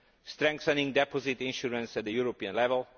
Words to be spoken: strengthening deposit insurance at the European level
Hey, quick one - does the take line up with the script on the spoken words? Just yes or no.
yes